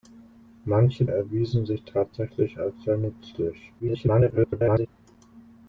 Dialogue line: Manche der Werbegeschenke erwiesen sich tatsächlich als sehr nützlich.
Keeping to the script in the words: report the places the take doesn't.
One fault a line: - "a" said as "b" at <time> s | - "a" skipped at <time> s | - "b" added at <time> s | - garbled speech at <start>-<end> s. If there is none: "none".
- "der Werbegeschenke" skipped at 1.1 s
- garbled speech at 3.8-4.9 s